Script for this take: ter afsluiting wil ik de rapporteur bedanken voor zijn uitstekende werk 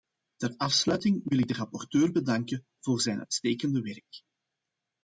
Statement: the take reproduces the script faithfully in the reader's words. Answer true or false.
true